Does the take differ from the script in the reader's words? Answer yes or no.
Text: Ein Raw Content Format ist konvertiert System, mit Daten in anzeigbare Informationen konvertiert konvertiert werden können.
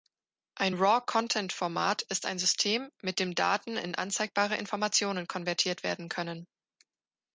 yes